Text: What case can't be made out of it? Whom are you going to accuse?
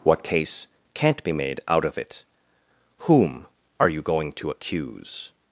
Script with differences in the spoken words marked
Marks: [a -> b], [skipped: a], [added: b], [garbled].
What case can't be made out of it? Whom are you going to accuse?